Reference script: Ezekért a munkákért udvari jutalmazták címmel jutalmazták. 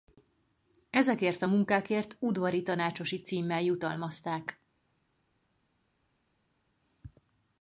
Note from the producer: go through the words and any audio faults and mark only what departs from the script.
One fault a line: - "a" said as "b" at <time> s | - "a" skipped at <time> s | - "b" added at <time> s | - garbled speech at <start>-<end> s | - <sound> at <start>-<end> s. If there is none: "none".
- "jutalmazták" said as "tanácsosi" at 2.6 s